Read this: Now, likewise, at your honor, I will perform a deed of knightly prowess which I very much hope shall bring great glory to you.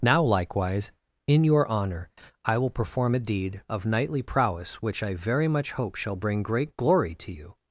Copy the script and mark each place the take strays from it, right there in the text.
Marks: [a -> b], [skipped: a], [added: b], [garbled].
Now, likewise, [at -> in] your honor, I will perform a deed of knightly prowess which I very much hope shall bring great glory to you.